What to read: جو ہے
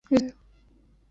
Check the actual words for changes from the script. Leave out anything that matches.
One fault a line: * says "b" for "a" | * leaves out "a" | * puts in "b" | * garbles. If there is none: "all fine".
all fine